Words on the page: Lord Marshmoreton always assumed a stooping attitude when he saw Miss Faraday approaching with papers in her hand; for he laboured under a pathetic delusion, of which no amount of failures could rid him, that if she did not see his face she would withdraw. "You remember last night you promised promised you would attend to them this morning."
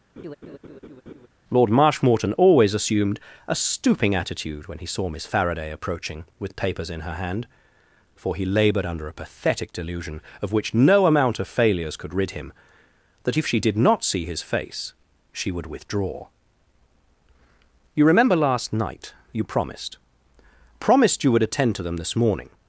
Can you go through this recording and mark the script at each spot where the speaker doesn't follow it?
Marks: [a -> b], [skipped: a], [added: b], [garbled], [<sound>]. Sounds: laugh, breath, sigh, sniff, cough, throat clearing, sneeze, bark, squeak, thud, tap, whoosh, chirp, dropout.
[laugh] Lord Marshmoreton always assumed a stooping attitude when he saw Miss Faraday approaching with papers in her hand; for he laboured under a pathetic delusion, of which no amount of failures could rid him, that if she did not see his face she would withdraw. "You remember last night you promised promised you would attend to them this morning."